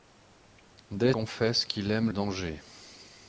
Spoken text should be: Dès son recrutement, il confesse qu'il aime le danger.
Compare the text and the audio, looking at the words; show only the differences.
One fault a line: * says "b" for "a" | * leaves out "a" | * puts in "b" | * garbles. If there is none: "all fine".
* leaves out "son recrutement il"
* leaves out "le"